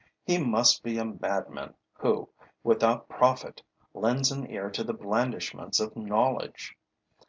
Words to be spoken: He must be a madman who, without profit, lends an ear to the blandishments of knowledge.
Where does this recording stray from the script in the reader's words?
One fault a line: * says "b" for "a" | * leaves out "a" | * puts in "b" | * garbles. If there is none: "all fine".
all fine